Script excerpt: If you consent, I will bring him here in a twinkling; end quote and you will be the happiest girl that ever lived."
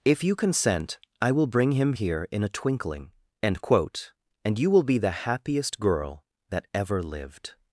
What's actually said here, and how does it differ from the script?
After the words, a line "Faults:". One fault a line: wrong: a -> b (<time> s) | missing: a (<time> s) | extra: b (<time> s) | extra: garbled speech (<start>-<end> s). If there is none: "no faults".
If you consent, I will bring him here in a twinkling; end quote and you will be the happiest girl that ever lived."
Faults:
no faults